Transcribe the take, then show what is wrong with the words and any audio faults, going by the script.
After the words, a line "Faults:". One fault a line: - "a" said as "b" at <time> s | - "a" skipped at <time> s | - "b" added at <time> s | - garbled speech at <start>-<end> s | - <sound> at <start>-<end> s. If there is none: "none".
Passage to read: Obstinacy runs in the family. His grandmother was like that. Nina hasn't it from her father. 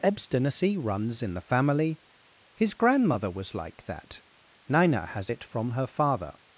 Obstinacy runs in the family. His grandmother was like that. Nina has it from her father.
Faults:
- "hasn't" said as "has" at 5.0 s